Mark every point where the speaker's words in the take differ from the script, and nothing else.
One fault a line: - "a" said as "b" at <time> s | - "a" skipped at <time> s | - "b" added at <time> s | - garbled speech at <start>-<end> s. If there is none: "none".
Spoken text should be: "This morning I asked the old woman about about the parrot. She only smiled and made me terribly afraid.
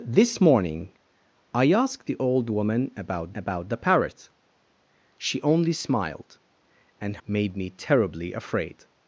none